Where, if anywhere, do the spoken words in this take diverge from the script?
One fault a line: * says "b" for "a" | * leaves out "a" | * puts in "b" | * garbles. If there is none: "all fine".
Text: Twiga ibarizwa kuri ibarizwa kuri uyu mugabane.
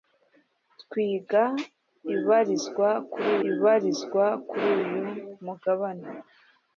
all fine